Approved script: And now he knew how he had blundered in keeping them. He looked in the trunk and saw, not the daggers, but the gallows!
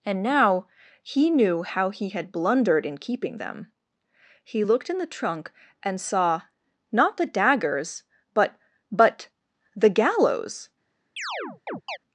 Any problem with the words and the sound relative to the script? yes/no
yes